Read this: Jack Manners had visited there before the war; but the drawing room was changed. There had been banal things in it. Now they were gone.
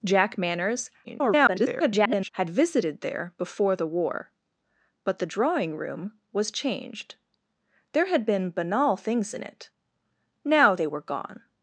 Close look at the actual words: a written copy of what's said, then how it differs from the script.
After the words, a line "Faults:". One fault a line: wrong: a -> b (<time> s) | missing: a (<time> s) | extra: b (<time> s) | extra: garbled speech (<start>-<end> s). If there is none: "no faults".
Jack Manners [garbled] had visited there before the war; but the drawing room was changed. There had been banal things in it. Now they were gone.
Faults:
extra: garbled speech (1.0-2.3 s)